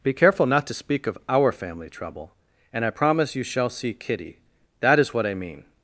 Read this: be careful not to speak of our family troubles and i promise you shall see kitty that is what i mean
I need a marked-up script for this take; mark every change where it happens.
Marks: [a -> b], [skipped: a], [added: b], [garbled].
be careful not to speak of our family [troubles -> trouble] and i promise you shall see kitty that is what i mean